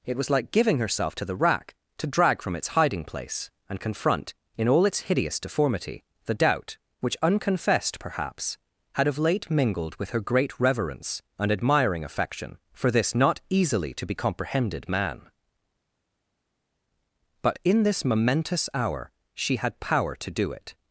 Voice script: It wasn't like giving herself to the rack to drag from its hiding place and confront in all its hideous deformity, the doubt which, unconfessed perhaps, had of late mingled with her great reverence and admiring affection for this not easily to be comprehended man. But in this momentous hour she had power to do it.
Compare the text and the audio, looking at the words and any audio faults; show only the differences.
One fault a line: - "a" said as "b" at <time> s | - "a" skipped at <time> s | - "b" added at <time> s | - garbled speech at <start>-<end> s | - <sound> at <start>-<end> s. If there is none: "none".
- "wasn't" said as "was" at 0.2 s